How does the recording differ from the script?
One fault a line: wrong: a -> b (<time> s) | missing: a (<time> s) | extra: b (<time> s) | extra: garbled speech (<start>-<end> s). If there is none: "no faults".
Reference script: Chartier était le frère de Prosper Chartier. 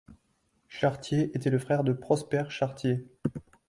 no faults